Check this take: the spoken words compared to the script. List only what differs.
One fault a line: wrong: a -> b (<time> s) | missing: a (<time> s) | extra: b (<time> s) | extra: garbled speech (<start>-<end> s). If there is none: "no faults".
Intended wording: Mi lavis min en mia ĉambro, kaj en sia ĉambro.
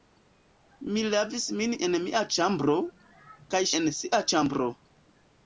no faults